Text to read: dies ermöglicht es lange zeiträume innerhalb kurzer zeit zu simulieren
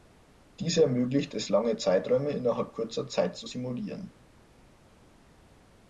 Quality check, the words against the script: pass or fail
pass